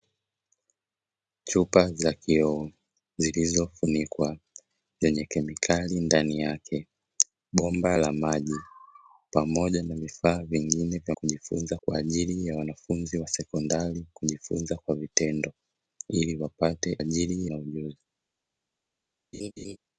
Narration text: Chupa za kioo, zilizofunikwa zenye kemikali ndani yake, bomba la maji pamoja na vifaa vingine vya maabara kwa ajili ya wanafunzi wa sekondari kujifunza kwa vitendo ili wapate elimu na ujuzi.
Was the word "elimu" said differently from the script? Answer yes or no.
yes